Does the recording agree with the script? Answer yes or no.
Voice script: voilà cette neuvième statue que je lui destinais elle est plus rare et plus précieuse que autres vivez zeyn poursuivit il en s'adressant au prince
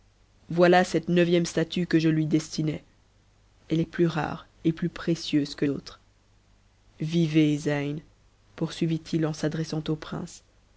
yes